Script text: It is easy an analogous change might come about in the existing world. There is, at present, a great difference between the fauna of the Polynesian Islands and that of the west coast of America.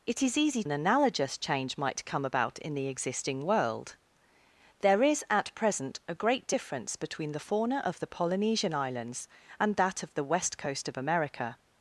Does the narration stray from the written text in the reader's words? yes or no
no